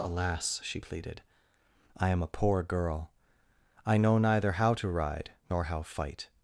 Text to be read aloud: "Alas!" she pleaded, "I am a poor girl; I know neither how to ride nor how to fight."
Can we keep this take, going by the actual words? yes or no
no